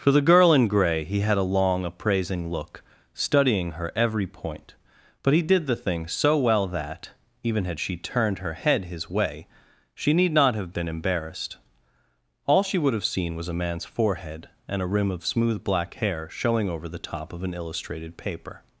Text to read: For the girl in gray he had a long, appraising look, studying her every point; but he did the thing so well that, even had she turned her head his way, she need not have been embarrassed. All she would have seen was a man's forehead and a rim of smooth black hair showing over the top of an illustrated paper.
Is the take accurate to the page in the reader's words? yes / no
yes